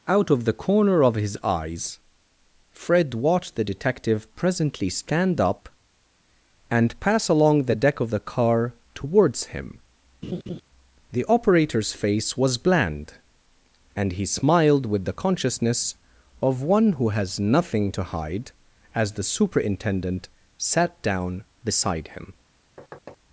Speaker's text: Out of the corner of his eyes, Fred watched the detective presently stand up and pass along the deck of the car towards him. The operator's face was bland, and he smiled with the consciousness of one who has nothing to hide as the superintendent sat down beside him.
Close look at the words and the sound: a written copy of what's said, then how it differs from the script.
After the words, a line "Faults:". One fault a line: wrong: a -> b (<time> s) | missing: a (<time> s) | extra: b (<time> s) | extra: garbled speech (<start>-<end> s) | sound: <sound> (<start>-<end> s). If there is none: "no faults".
Out of the corner of his eyes, Fred watched the detective presently stand up and pass along the deck of the car towards him. The operator's face was bland, and he smiled with the consciousness of one who has nothing to hide as the superintendent sat down beside him.
Faults:
sound: laugh (10.2-10.6 s)
sound: thud (22.8-23.2 s)